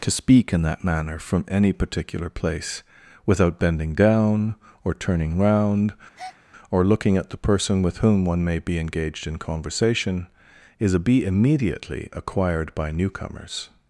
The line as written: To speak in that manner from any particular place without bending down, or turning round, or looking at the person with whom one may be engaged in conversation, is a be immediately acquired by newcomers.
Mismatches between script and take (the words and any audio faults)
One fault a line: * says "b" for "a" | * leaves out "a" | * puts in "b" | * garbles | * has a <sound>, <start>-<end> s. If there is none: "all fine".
* has a breath, 6.1-6.4 s